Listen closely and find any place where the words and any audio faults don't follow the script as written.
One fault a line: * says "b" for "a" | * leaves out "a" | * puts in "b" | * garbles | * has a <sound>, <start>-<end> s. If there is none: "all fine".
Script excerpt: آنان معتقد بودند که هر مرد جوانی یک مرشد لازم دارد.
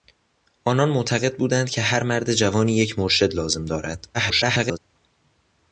* garbles